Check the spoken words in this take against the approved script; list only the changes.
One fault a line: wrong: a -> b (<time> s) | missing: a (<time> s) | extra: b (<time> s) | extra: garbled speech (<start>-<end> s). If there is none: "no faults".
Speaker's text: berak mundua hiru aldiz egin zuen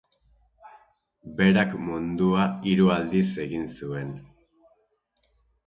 no faults